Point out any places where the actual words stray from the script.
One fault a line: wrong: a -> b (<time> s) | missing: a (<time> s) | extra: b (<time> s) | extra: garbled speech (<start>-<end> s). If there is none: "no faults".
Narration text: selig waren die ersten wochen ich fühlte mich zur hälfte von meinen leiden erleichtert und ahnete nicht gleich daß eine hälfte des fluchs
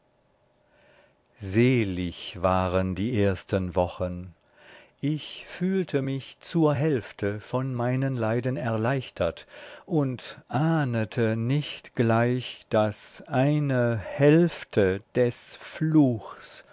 no faults